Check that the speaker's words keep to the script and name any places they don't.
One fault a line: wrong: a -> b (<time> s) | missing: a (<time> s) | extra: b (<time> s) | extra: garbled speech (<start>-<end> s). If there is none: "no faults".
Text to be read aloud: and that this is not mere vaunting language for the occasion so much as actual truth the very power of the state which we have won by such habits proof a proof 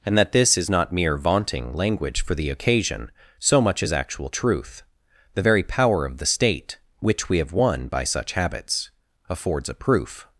wrong: proof -> affords (9.3 s)